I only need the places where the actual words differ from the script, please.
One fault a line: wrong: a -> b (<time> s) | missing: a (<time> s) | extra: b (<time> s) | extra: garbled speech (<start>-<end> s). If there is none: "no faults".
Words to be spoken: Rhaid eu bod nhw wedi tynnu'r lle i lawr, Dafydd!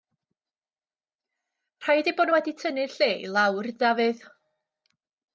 no faults